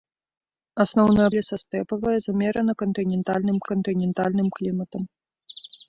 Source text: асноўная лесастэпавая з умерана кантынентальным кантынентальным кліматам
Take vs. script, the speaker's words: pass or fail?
pass